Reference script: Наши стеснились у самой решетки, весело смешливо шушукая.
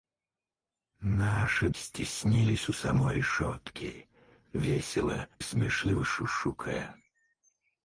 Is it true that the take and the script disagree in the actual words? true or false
false